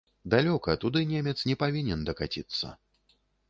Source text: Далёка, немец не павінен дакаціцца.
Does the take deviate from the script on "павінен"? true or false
false